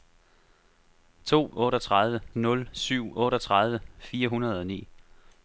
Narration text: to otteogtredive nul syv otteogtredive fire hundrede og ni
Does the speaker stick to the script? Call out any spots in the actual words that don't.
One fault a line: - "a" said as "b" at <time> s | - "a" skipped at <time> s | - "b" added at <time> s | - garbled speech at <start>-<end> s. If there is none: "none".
none